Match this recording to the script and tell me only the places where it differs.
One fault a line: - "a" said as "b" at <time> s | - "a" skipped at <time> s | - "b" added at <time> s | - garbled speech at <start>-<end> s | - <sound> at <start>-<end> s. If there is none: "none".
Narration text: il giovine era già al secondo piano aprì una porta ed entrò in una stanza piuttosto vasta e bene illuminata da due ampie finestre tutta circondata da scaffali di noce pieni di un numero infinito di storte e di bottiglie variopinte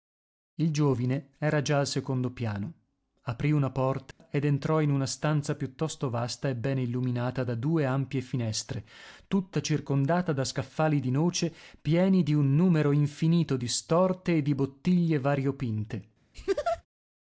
- dropout at 4.1-4.2 s
- laugh at 16.3-16.8 s